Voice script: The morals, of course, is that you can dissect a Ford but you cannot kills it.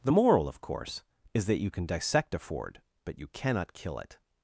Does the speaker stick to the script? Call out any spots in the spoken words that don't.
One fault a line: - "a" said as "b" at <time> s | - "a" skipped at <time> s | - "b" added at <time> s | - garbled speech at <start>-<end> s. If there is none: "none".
- "morals" said as "moral" at 0.1 s
- "kills" said as "kill" at 3.7 s